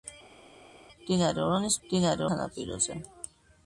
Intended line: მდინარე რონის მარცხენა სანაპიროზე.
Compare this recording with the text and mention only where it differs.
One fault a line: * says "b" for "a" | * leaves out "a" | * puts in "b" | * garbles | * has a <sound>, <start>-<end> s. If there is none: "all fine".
* says "მდინარე" for "მარცხენა"